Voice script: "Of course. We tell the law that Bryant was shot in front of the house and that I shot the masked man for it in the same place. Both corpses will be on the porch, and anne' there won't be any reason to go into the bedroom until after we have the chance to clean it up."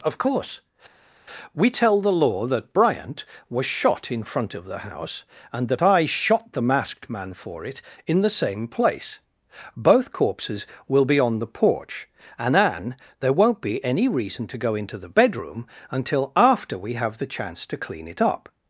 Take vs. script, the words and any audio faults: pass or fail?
pass